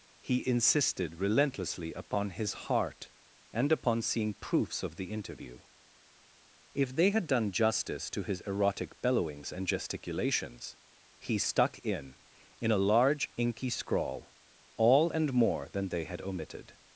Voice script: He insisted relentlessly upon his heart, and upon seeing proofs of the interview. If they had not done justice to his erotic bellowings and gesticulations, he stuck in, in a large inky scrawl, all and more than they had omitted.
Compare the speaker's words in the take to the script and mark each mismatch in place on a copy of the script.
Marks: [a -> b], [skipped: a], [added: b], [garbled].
He insisted relentlessly upon his heart, and upon seeing proofs of the interview. If they had [skipped: not] done justice to his erotic bellowings and gesticulations, he stuck in, in a large inky scrawl, all and more than they had omitted.